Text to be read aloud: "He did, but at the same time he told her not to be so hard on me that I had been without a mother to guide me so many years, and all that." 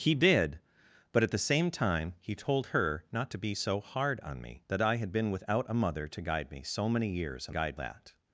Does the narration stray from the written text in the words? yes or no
yes